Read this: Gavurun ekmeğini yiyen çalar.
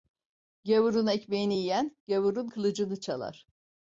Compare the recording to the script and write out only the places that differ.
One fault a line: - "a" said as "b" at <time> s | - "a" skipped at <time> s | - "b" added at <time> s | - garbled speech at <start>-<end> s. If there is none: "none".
- "gavurun kılıcını" added at 2.1 s